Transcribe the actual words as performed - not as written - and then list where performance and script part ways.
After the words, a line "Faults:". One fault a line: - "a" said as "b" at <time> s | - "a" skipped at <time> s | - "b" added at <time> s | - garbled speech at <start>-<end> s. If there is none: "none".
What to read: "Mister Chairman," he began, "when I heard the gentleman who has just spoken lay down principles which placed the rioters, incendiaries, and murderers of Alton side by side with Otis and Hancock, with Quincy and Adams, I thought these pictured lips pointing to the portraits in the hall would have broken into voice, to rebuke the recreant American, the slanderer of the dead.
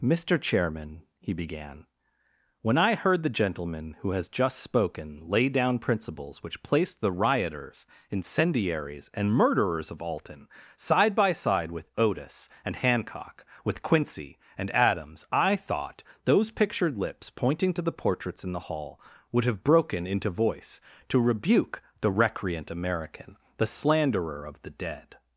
"Mister Chairman," he began, "when I heard the gentleman who has just spoken lay down principles which placed the rioters, incendiaries, and murderers of Alton side by side with Otis and Hancock, with Quincy and Adams, I thought those pictured lips pointing to the portraits in the hall would have broken into voice, to rebuke the recreant American, the slanderer of the dead.
Faults:
- "these" said as "those" at 16.2 s